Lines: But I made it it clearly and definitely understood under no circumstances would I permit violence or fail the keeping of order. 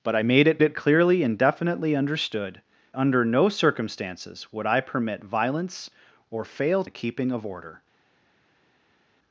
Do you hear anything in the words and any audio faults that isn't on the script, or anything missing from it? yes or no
no